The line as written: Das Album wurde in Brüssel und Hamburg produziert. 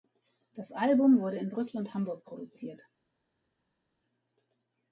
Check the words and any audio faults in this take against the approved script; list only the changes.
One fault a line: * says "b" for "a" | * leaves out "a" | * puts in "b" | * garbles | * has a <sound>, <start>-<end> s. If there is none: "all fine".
all fine